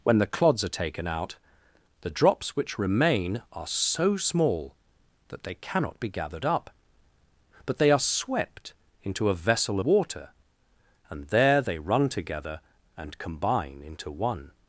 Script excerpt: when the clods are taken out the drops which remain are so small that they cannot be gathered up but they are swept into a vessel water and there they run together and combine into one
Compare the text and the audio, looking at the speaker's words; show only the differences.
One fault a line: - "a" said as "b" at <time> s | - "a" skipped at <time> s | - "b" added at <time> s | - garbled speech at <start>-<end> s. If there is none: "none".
none